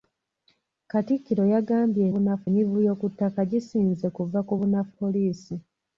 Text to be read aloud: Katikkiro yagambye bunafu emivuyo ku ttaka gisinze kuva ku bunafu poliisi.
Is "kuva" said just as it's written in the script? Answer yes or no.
yes